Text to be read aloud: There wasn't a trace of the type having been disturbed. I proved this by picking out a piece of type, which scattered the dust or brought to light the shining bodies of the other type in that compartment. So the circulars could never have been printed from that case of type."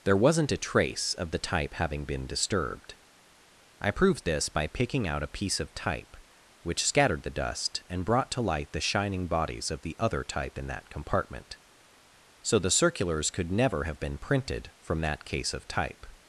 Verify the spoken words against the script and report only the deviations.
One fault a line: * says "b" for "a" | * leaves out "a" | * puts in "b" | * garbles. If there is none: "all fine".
* says "and" for "or"